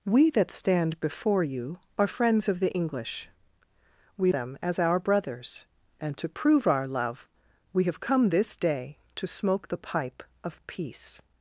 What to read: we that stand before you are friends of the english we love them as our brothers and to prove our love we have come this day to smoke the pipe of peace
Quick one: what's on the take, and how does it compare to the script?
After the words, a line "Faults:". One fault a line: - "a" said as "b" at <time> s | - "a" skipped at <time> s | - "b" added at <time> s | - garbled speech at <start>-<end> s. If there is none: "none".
we that stand before you are friends of the english we them as our brothers and to prove our love we have come this day to smoke the pipe of peace
Faults:
- "love" skipped at 4.3 s